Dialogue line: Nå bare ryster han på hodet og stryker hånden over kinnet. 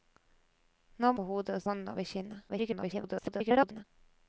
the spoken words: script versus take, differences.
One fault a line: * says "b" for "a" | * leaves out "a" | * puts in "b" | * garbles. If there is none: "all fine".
* leaves out "bare ryster han"
* leaves out "stryker"
* garbles